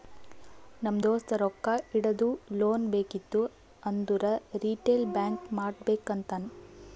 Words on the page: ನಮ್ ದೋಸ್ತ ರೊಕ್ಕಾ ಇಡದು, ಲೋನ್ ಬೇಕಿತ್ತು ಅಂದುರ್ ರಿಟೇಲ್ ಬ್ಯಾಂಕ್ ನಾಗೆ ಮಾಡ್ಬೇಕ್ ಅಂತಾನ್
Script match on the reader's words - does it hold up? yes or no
no